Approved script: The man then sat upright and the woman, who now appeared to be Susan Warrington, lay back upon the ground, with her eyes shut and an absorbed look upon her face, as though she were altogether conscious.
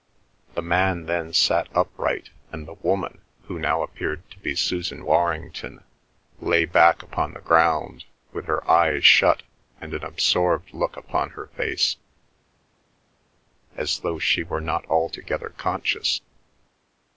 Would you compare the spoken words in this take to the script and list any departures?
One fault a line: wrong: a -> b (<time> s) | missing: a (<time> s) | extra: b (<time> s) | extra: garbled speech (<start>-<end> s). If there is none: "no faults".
extra: not (14.6 s)